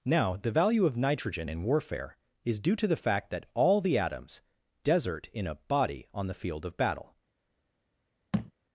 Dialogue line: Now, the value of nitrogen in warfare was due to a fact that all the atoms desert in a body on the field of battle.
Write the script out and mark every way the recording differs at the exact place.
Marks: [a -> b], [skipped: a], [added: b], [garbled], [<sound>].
Now, the value of nitrogen in warfare [was -> is] due to [a -> the] fact that all the atoms desert in a body on the field of battle. [thud]